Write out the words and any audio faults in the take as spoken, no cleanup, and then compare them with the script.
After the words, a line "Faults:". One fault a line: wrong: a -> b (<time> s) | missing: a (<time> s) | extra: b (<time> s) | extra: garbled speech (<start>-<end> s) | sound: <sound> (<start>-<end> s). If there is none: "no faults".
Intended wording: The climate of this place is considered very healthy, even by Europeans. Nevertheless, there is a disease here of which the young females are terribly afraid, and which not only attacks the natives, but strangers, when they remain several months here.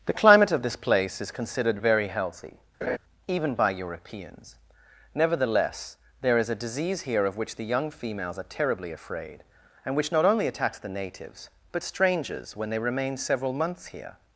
The climate of this place is considered very healthy, even by Europeans. Nevertheless, there is a disease here of which the young females are terribly afraid, and which not only attacks the natives, but strangers, when they remain several months here.
Faults:
sound: laugh (2.8-3.0 s)